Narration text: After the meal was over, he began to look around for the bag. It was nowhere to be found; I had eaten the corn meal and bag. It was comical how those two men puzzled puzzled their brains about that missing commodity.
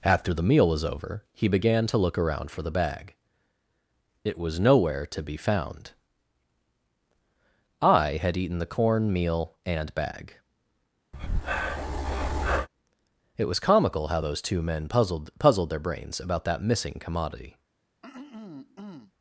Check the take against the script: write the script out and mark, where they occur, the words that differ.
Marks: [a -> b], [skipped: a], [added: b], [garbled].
After the meal was over, he began to look around for the bag. It was nowhere to be found; I had eaten the corn meal and bag. It was comical how those two men puzzled puzzled their brains about that missing commodity.